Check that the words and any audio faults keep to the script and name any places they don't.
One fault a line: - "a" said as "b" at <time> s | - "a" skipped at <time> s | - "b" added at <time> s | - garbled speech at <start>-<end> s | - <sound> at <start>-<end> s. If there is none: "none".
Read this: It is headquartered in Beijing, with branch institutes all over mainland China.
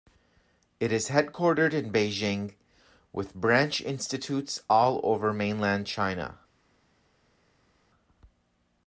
none